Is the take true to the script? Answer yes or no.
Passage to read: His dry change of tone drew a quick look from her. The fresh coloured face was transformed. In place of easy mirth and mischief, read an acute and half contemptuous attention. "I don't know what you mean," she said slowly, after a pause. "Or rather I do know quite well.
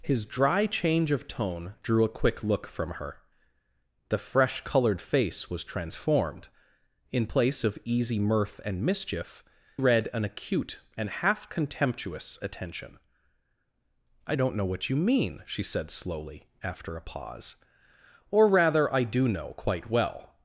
yes